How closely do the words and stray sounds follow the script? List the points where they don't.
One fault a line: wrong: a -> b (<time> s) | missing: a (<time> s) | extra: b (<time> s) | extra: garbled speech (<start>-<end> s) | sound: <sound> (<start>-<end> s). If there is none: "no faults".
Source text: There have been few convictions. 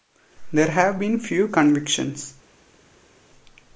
no faults